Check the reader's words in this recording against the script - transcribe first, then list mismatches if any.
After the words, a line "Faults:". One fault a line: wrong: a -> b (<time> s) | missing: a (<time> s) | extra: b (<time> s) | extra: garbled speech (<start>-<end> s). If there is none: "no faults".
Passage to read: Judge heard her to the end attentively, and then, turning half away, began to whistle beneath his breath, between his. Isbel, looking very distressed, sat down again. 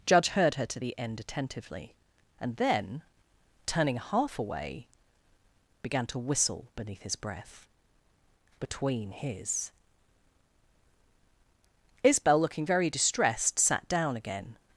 Judge heard her to the end attentively, and then, turning half away, began to whistle beneath his breath, between his. Isbel, looking very distressed, sat down again.
Faults:
no faults